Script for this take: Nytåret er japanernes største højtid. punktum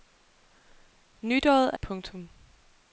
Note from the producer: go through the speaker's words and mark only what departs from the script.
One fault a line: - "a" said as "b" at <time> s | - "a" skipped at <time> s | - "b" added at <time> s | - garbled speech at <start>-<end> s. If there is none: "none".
- "japanernes største højtid" skipped at 1.8 s